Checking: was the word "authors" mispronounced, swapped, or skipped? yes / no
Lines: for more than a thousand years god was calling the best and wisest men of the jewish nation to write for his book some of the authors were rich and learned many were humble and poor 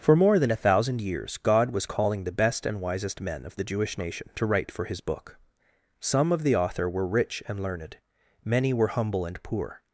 yes